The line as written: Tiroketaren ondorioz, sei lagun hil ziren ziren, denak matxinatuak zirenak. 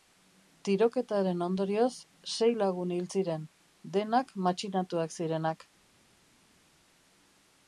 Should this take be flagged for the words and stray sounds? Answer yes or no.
yes